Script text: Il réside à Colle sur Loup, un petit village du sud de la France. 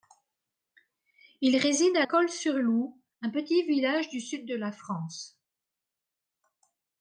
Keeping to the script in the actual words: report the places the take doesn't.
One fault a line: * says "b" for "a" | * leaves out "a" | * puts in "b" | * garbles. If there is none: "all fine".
all fine